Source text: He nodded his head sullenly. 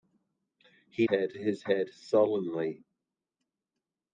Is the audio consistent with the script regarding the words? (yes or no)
no